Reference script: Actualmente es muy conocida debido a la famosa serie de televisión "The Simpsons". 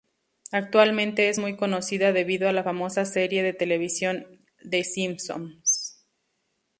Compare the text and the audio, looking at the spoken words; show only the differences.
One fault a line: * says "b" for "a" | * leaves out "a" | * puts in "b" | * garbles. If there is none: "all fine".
all fine